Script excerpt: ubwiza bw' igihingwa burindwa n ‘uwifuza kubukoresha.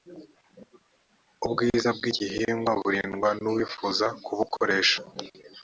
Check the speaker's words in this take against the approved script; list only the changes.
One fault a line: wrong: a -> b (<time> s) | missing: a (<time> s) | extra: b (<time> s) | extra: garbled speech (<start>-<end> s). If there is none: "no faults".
no faults